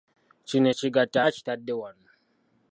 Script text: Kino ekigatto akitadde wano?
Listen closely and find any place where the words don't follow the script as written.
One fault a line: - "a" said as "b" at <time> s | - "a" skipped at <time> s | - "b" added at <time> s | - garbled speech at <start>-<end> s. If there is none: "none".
none